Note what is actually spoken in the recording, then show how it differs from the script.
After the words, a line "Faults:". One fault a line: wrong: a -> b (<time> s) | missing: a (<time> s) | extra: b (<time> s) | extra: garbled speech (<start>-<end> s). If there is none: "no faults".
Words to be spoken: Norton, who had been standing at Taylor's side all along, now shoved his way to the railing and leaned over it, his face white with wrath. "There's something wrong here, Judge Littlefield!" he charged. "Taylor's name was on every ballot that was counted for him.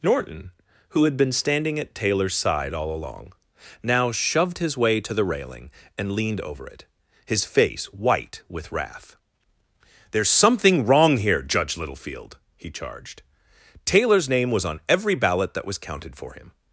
Norton, who had been standing at Taylor's side all along, now shoved his way to the railing and leaned over it, his face white with wrath. "There's something wrong here, Judge Littlefield!" he charged. "Taylor's name was on every ballot that was counted for him.
Faults:
no faults